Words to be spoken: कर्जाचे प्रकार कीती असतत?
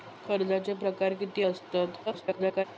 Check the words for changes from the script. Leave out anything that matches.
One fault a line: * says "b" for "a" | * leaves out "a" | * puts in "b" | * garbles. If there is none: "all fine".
* garbles